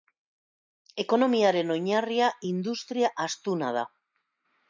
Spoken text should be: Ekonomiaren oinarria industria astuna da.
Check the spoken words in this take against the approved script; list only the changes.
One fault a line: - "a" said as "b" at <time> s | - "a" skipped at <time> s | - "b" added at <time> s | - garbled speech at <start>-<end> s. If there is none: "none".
none